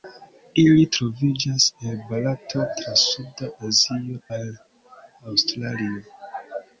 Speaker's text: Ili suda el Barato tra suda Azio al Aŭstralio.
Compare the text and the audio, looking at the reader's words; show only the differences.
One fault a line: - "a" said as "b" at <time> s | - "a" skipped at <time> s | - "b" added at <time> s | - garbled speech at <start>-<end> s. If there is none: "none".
- "suda" said as "troviĝas" at 0.9 s